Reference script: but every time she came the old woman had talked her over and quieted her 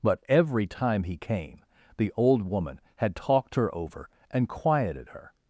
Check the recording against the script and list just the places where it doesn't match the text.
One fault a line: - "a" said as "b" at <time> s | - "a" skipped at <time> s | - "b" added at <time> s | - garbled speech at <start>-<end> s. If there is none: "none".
- "she" said as "he" at 1.0 s